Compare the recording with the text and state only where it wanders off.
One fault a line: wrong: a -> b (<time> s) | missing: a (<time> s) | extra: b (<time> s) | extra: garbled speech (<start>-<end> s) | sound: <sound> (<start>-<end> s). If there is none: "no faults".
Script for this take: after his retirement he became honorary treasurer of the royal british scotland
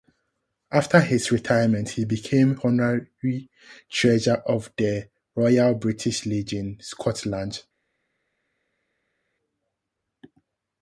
extra: legion (6.3 s)